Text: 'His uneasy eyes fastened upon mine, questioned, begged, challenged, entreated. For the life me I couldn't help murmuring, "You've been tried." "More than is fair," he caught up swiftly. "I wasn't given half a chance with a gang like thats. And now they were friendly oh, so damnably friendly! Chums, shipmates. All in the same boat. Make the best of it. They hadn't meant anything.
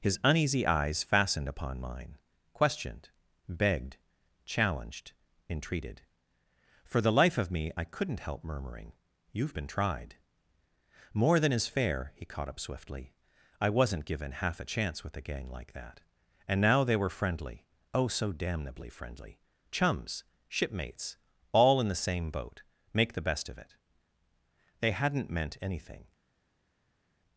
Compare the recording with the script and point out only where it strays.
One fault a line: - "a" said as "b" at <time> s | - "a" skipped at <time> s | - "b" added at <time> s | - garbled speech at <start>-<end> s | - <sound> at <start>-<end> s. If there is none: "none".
- "of" added at 7.4 s
- "thats" said as "that" at 15.7 s